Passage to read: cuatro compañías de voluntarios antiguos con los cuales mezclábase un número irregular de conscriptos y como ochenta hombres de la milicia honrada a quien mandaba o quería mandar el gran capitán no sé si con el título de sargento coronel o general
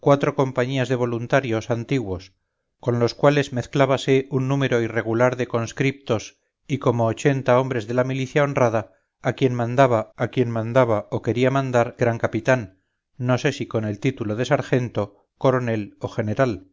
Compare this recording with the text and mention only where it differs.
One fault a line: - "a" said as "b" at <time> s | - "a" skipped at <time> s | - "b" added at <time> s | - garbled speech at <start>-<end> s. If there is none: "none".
- "a quien mandaba" added at 10.2 s
- "el" skipped at 12.0 s